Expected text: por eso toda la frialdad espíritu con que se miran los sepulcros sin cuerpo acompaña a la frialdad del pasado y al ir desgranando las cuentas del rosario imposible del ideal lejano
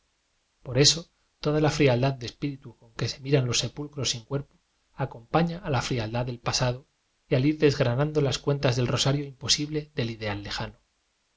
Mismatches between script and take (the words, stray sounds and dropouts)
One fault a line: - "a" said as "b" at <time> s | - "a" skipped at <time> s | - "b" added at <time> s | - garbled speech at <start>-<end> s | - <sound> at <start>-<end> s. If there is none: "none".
- "de" added at 2.1 s